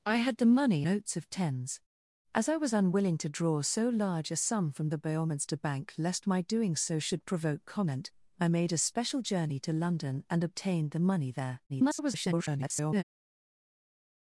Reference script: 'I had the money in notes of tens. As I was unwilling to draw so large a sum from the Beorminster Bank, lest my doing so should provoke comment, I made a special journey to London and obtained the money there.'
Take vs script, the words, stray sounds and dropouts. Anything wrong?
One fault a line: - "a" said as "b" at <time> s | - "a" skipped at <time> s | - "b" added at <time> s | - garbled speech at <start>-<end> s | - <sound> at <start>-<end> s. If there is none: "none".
- "in" skipped at 0.8 s
- garbled speech at 11.7-13.0 s